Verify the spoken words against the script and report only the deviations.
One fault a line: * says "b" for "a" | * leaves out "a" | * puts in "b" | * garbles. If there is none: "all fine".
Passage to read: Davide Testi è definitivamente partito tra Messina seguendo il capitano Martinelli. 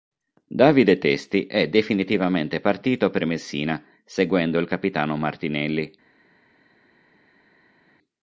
* says "per" for "tra"